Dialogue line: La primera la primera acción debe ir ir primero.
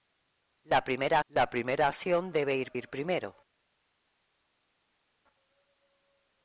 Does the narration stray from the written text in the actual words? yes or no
no